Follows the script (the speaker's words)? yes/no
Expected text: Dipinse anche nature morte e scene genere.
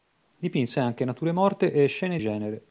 yes